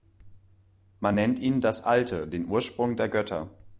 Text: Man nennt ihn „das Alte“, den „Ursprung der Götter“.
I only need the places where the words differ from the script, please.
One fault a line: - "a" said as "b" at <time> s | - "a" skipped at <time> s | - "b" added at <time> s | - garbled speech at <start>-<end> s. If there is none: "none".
none